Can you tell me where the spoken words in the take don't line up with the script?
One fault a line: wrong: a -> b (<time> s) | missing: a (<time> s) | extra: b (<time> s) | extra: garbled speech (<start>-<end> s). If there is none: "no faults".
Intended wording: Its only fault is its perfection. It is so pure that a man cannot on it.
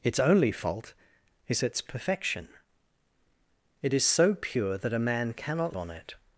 no faults